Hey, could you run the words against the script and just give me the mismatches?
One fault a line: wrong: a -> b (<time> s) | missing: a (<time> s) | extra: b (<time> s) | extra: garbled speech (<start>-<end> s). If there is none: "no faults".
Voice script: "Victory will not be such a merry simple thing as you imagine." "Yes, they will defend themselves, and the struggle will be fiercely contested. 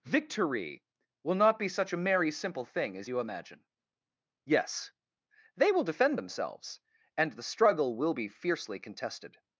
no faults